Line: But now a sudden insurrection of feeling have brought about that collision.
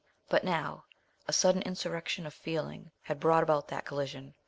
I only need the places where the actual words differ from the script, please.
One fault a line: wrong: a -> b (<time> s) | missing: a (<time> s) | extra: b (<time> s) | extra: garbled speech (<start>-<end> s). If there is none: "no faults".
wrong: have -> had (3.0 s)